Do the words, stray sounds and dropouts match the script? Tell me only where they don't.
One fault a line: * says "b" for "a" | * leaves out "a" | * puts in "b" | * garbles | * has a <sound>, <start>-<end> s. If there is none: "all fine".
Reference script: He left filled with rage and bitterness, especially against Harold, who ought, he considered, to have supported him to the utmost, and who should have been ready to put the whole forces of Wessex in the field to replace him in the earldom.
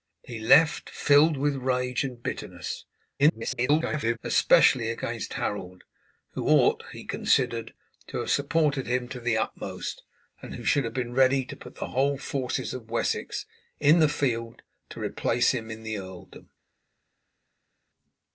* garbles